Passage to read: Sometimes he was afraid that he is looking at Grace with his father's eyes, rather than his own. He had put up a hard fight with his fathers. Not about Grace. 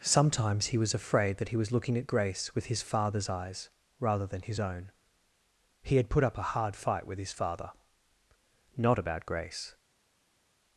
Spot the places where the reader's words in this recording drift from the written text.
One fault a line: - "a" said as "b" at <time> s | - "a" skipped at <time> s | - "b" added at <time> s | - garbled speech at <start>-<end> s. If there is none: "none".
- "is" said as "was" at 1.6 s
- "fathers" said as "father" at 7.3 s